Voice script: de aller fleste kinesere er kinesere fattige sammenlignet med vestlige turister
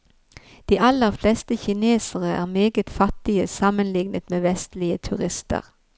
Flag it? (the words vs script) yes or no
yes